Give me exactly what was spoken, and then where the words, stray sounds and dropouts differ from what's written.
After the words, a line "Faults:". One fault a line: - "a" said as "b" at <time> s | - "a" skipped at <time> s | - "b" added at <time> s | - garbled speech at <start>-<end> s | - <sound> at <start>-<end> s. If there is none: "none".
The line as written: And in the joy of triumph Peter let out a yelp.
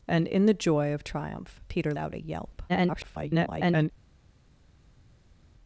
And in the joy of triumph Peter out a yelp. [garbled]
Faults:
- "let" skipped at 1.9 s
- garbled speech at 2.7-3.9 s